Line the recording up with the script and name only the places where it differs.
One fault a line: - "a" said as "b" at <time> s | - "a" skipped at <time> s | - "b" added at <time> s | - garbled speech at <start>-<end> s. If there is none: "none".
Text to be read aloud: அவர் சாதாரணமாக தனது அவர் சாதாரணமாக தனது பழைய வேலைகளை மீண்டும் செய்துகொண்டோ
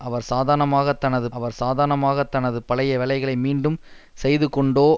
none